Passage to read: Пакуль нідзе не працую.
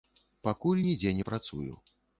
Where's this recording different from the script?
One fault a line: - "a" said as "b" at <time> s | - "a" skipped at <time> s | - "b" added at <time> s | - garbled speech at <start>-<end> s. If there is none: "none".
none